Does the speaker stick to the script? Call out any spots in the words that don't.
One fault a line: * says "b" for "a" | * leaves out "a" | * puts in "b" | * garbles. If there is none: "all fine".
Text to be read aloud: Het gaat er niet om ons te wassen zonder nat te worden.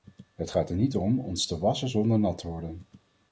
all fine